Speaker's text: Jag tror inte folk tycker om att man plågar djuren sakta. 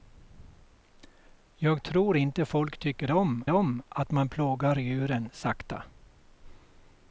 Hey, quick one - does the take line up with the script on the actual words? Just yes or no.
no